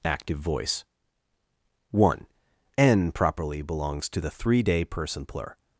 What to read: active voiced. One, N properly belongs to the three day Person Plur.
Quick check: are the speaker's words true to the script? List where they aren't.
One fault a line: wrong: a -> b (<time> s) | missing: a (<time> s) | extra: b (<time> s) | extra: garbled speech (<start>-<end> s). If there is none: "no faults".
wrong: voiced -> voice (0.4 s)